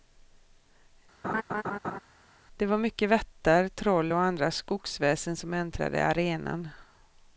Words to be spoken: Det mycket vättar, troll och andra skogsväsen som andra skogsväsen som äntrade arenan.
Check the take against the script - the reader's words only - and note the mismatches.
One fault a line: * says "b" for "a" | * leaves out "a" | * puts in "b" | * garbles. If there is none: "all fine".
* puts in "var"
* leaves out "andra skogsväsen som"